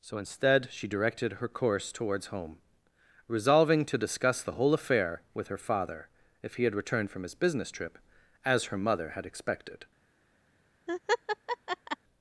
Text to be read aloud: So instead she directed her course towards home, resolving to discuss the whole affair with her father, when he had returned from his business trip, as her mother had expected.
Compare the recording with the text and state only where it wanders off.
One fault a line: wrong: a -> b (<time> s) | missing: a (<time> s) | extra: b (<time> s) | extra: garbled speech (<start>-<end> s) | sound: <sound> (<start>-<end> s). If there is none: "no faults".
wrong: when -> if (6.4 s)
sound: laugh (10.9-12.0 s)